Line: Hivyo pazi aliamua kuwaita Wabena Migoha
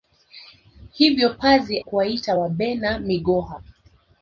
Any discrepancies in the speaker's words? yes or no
yes